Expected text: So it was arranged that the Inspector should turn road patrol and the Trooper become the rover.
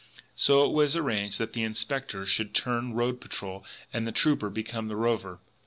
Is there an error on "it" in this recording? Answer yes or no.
no